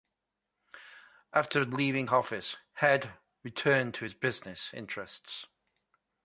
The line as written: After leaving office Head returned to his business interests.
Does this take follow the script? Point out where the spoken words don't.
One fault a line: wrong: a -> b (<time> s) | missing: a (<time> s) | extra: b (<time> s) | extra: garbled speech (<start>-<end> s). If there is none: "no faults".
no faults